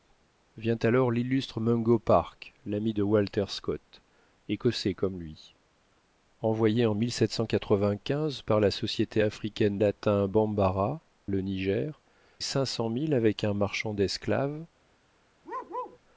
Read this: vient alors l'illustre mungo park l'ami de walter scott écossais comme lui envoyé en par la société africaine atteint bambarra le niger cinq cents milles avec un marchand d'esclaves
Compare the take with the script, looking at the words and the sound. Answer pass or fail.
fail